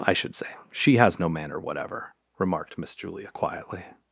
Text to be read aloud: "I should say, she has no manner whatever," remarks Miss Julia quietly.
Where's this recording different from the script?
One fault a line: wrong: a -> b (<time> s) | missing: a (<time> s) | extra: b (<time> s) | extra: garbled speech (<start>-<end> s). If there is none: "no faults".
wrong: remarks -> remarked (2.4 s)